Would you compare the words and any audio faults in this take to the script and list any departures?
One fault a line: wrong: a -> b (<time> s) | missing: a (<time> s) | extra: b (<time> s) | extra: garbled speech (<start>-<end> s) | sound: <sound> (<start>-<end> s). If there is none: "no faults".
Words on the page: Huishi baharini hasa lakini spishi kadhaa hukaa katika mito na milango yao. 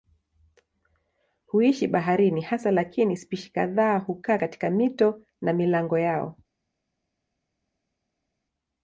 no faults